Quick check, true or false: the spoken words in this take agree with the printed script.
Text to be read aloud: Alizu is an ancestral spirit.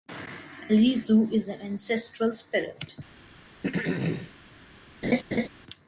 true